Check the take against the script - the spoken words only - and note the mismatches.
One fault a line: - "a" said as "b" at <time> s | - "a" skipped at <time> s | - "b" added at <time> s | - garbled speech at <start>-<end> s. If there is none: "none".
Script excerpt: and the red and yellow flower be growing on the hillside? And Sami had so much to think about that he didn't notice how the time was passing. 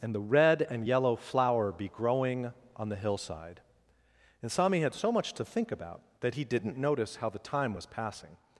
none